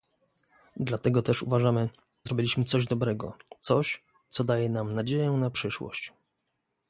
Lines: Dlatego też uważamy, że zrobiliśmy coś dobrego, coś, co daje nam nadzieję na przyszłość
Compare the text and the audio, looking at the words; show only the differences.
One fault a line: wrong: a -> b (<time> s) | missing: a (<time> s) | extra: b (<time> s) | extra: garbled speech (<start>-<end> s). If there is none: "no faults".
missing: że (1.9 s)